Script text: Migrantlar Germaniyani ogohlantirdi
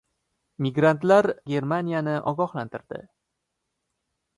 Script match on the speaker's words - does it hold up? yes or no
yes